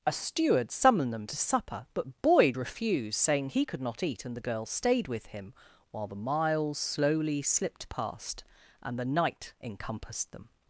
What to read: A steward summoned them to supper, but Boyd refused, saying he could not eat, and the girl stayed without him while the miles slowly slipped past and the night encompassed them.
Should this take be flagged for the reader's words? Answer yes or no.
yes